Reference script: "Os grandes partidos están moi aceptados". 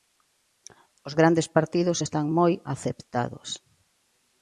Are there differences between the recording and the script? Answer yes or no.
no